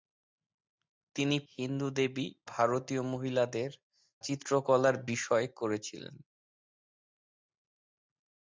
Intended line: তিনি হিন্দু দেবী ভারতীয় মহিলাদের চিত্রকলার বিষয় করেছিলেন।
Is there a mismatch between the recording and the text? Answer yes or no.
no